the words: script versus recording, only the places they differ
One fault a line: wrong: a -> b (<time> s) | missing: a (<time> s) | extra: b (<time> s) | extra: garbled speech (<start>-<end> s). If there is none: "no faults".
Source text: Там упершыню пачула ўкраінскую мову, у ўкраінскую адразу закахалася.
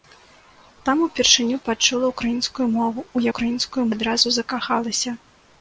no faults